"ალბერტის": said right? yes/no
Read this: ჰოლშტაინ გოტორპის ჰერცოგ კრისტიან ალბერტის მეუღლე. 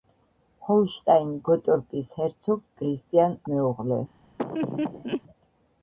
no